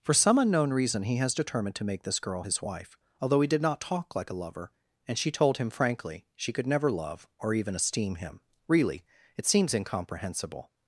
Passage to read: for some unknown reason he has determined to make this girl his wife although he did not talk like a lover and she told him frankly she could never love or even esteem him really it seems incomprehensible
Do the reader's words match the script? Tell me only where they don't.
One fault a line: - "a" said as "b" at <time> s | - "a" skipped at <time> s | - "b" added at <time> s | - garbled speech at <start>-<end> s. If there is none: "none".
none